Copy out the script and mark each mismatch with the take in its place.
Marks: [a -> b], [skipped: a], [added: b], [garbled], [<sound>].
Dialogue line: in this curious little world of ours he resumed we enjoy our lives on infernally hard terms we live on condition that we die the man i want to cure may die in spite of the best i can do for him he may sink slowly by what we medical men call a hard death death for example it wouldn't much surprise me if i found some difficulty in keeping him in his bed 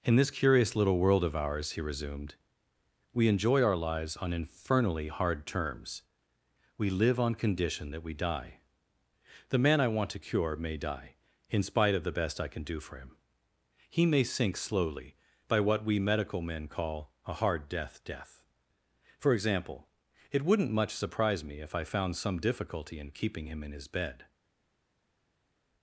in this curious little world of ours he resumed we enjoy our lives on infernally hard terms we live on condition that we die the man i want to cure may die in spite of the best i can do for him he may sink slowly by what we medical men call a hard death death for example it wouldn't much surprise me if i found some difficulty in keeping him in his bed